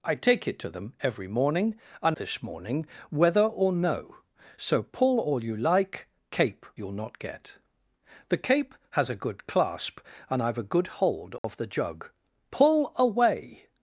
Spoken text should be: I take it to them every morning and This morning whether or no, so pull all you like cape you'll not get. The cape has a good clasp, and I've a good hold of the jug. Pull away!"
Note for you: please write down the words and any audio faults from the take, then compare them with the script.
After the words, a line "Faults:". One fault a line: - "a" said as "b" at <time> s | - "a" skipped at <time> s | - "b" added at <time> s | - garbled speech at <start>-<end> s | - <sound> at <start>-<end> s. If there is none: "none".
I take it to them every morning and This morning whether or no, so pull all you like cape you'll not get. The cape has a good clasp, and I've a good hold of the jug. Pull away!"
Faults:
- dropout at 11.4-11.4 s